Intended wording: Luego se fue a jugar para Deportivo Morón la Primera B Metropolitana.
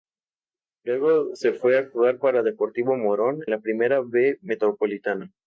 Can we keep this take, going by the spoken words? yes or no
yes